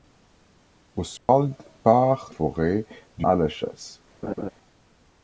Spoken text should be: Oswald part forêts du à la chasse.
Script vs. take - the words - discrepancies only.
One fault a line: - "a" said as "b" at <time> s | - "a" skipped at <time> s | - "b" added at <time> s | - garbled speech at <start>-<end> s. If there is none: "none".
none